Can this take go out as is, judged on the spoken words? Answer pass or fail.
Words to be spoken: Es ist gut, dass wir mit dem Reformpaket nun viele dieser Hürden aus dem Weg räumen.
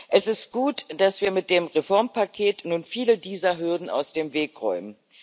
pass